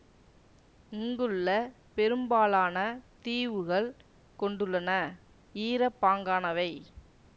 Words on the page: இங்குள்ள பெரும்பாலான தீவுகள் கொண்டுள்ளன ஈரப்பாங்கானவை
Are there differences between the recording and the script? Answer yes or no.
no